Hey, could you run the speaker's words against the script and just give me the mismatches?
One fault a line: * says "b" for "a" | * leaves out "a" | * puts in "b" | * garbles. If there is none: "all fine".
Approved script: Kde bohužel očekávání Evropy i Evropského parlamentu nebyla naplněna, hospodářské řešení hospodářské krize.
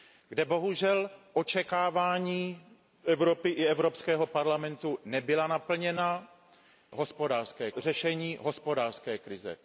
all fine